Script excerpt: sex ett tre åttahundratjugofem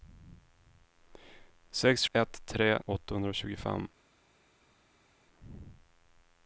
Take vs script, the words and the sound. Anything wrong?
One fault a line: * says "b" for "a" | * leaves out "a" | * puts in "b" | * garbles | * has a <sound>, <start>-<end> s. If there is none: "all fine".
all fine